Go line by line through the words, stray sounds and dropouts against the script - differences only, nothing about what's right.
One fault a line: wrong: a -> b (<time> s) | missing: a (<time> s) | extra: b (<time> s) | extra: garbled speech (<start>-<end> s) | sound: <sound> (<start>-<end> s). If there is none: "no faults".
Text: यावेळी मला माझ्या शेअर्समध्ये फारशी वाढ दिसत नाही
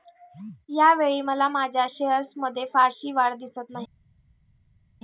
no faults